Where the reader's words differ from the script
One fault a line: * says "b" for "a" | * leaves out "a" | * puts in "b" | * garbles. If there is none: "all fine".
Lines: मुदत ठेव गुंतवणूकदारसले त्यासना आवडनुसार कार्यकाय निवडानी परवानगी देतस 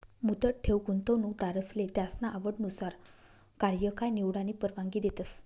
all fine